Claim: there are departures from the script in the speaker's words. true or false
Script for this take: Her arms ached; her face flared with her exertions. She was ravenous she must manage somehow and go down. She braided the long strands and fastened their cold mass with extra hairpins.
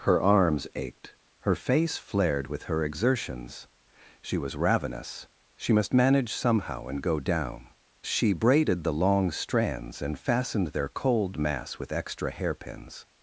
false